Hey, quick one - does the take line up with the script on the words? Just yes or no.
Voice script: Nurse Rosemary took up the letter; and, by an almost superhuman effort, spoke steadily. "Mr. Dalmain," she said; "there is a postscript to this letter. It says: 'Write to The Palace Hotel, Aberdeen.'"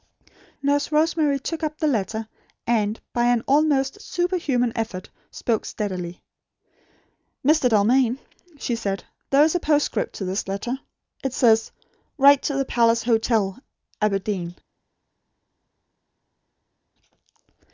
yes